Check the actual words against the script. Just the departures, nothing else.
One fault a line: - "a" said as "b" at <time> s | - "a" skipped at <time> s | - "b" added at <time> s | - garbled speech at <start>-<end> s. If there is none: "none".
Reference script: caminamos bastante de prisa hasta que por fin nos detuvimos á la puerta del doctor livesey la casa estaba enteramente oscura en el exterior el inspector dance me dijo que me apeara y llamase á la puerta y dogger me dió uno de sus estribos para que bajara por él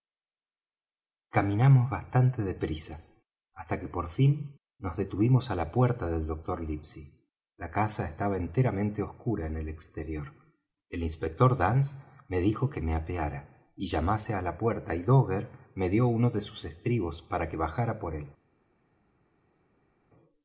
none